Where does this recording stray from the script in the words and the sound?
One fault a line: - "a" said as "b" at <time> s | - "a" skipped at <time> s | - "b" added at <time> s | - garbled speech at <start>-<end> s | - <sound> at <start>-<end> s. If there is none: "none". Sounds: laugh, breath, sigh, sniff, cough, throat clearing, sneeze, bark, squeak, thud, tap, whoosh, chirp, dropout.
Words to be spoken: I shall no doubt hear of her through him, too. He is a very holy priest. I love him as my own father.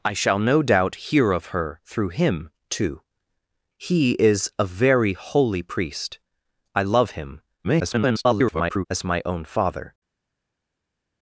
- garbled speech at 7.6-8.9 s